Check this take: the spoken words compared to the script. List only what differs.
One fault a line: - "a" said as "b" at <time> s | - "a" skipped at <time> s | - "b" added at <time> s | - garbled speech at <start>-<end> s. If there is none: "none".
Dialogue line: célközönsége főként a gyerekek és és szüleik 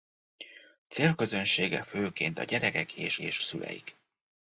none